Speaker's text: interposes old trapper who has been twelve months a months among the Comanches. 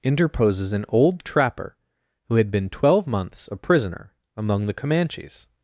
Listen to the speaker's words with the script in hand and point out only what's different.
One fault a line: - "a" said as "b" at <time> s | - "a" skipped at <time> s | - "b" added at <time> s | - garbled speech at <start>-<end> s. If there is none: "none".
- "an" added at 0.7 s
- "has" said as "had" at 2.4 s
- "months" said as "prisoner" at 3.6 s